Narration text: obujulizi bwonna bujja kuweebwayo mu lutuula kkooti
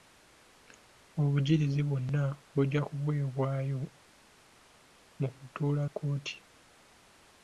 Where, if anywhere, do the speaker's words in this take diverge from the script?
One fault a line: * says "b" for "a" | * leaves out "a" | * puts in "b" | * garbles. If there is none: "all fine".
all fine